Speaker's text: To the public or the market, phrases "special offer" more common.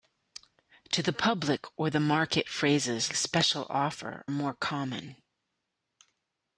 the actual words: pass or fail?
pass